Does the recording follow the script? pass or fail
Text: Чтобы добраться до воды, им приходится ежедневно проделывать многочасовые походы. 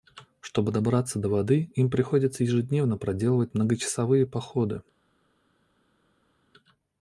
pass